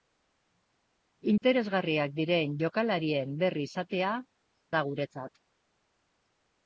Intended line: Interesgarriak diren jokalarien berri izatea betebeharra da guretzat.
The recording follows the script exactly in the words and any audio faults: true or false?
false